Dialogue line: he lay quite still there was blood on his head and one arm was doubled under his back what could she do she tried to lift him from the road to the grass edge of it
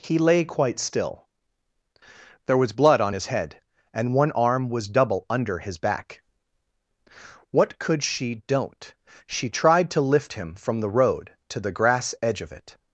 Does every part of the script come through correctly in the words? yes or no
no